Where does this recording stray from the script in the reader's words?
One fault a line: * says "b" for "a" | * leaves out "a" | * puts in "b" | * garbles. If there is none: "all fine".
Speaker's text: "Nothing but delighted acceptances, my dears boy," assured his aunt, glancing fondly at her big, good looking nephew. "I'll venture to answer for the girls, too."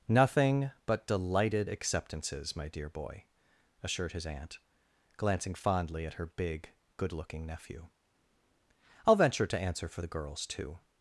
* says "dear" for "dears"